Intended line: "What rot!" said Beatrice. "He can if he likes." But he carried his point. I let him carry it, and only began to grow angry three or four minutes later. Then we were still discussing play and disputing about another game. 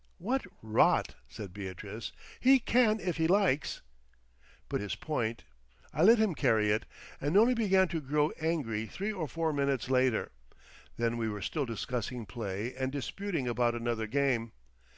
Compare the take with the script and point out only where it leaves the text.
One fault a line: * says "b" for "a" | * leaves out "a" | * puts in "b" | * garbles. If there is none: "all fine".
* leaves out "he carried"